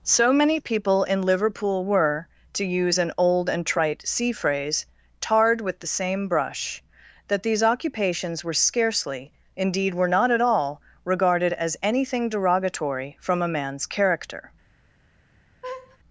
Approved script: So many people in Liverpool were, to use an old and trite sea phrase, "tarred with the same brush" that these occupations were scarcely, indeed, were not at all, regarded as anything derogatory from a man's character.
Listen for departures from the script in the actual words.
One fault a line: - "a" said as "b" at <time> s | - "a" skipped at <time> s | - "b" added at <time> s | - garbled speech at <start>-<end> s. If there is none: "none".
none